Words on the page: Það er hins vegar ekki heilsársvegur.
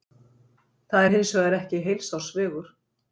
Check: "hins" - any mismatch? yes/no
no